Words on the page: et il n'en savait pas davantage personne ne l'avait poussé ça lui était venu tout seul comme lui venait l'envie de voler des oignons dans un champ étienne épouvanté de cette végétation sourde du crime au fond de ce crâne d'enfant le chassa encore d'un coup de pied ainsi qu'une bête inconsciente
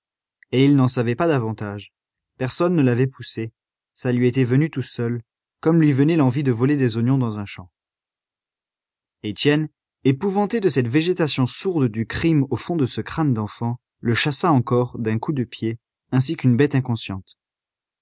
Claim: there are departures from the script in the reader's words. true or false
false